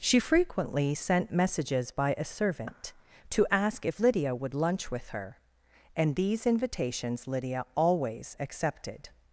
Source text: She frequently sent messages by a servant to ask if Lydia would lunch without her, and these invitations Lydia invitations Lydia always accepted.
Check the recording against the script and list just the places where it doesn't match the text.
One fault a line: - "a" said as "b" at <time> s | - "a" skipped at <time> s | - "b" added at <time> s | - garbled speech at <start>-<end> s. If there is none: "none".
- "without" said as "with" at 4.9 s
- "invitations Lydia" skipped at 7.7 s